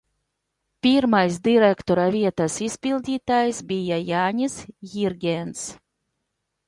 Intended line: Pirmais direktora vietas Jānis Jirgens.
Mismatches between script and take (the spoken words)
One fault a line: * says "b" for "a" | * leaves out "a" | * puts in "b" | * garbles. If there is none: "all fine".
* puts in "izpildītājs bija"